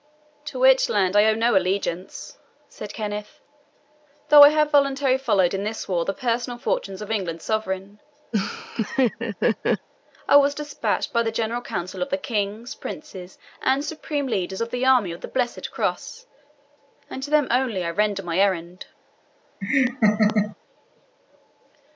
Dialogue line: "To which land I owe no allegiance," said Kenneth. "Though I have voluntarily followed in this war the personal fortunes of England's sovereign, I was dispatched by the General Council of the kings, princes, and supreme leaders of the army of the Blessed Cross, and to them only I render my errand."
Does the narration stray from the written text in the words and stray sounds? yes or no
yes